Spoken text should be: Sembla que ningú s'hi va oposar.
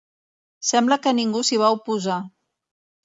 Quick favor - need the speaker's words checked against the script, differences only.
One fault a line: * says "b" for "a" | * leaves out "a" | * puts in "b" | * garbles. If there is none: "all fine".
all fine